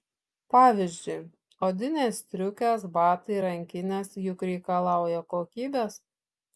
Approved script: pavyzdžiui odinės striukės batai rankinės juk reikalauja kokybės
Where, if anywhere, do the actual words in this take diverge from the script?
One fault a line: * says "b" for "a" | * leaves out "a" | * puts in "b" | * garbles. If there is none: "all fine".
all fine